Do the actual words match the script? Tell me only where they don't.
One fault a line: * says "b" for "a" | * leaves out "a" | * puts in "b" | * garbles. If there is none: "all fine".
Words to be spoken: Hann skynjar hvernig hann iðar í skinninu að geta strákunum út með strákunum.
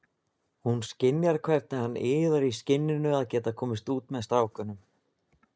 * says "Hún" for "Hann"
* says "komist" for "strákunum"